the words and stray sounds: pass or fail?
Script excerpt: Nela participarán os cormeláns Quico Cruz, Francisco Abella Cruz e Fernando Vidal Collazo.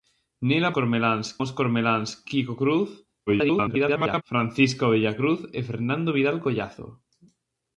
fail